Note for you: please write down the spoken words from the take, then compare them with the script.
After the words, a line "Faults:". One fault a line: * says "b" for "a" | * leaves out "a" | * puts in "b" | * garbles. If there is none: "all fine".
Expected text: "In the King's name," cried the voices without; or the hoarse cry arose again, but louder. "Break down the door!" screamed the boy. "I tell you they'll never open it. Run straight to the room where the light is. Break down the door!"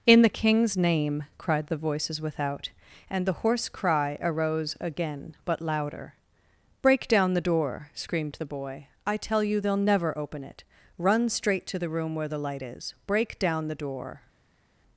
"In the King's name," cried the voices without; and the hoarse cry arose again, but louder. "Break down the door!" screamed the boy. "I tell you they'll never open it. Run straight to the room where the light is. Break down the door!"
Faults:
* says "and" for "or"